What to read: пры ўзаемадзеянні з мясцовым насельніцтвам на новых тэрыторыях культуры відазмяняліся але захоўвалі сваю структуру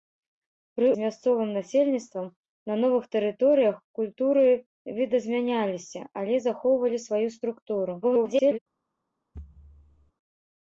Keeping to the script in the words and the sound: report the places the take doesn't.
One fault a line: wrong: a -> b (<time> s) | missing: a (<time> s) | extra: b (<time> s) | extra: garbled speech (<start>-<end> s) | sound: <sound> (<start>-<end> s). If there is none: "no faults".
missing: ўзаемадзеянні (0.9 s)
extra: garbled speech (8.0-8.6 s)
sound: thud (9.3-10.1 s)